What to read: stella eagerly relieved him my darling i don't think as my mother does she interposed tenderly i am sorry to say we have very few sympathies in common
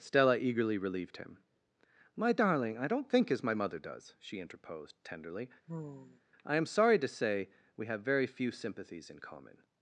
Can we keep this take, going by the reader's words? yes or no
yes